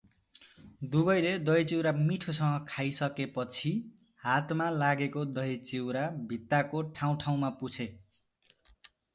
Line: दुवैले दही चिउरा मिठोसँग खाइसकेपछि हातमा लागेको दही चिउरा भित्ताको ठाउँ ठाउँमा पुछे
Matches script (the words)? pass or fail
pass